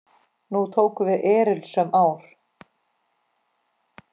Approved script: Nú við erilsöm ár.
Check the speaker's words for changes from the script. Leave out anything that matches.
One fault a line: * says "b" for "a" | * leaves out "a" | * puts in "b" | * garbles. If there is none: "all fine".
* puts in "tóku"